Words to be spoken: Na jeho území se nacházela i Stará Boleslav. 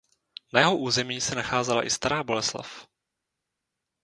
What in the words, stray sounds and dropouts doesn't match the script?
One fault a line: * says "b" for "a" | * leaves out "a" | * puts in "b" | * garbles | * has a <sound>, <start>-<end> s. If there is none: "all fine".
all fine